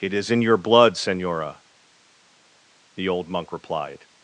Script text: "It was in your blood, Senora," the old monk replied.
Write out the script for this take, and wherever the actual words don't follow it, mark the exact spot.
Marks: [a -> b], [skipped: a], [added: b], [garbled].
"It [was -> is] in your blood, Senora," the old monk replied.